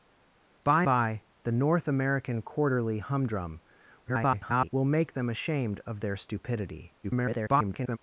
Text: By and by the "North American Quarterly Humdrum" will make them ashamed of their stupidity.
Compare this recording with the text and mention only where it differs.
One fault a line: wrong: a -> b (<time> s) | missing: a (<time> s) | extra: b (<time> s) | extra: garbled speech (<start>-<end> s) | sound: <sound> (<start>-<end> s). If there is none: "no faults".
missing: and (0.8 s)
extra: garbled speech (4.0-4.7 s)
extra: garbled speech (7.0-8.0 s)